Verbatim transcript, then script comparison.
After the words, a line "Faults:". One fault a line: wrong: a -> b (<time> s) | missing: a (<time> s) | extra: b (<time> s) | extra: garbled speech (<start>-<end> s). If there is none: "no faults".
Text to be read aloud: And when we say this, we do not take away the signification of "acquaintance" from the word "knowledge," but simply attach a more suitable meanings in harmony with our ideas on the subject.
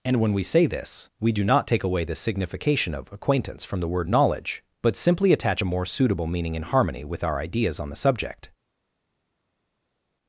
And when we say this, we do not take away the signification of "acquaintance" from the word "knowledge," but simply attach a more suitable meaning in harmony with our ideas on the subject.
Faults:
wrong: meanings -> meaning (6.3 s)